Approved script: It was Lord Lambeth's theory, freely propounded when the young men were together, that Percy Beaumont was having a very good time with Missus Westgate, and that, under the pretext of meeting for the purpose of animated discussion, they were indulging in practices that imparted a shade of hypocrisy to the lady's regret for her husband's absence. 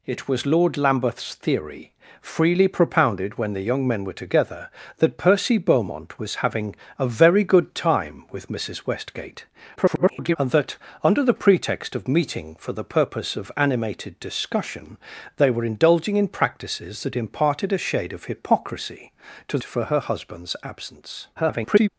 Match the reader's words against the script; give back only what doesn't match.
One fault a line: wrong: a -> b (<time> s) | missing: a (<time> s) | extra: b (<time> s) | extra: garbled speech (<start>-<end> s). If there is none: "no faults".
extra: garbled speech (9.8-10.4 s)
missing: the lady's regret (19.6 s)
extra: garbled speech (21.4-21.9 s)